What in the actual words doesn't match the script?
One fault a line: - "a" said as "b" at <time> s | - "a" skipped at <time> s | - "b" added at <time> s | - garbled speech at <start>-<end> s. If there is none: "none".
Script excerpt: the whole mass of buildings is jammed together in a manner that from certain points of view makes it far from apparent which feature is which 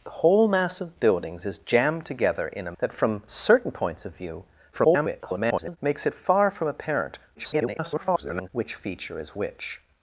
- "manner" skipped at 2.8 s
- garbled speech at 4.7-5.8 s
- garbled speech at 7.3-8.5 s